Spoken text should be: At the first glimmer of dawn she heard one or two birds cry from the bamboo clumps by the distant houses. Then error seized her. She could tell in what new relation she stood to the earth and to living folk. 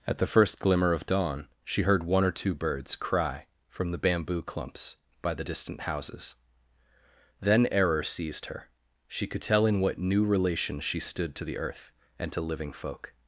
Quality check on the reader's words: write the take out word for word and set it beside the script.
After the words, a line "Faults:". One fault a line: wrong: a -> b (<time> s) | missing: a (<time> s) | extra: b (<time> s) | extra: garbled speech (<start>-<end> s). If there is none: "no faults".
At the first glimmer of dawn she heard one or two birds cry from the bamboo clumps by the distant houses. Then error seized her. She could tell in what new relation she stood to the earth and to living folk.
Faults:
no faults